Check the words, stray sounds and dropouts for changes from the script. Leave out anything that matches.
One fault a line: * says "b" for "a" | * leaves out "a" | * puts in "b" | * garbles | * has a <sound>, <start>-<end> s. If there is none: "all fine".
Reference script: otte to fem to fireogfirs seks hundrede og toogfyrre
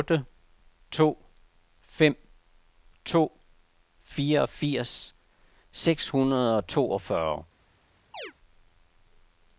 * has a chirp, 8.1-8.3 s